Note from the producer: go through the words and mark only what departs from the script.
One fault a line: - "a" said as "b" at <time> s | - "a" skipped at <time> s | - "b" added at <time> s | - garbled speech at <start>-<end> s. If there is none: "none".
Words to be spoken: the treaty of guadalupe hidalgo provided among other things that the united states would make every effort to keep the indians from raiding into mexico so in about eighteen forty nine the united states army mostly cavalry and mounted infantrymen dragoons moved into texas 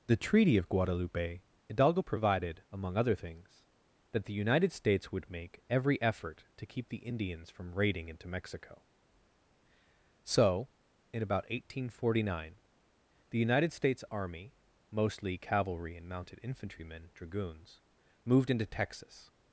none